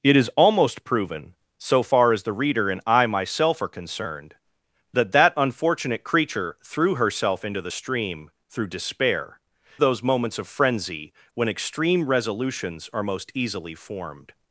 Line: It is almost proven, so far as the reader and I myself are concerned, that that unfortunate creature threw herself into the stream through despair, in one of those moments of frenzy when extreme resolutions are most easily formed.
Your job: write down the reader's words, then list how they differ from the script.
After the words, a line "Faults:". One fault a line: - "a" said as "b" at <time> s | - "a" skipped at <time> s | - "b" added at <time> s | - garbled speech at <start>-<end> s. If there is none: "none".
It is almost proven, so far as the reader and I myself are concerned, that that unfortunate creature threw herself into the stream through despair, those moments of frenzy when extreme resolutions are most easily formed.
Faults:
- "in one of" skipped at 9.4 s